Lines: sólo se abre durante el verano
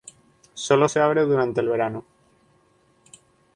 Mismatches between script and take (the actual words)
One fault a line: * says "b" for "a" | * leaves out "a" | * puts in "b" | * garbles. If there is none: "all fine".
all fine